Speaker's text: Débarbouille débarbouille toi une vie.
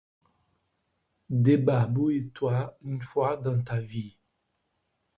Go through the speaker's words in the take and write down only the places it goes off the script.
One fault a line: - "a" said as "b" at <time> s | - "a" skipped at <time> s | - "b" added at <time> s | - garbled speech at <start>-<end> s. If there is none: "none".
- "débarbouille" skipped at 2.3 s
- "fois dans ta" added at 3.0 s